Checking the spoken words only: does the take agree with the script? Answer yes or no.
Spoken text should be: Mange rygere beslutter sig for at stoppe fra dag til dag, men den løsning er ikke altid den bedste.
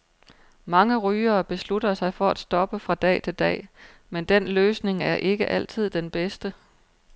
yes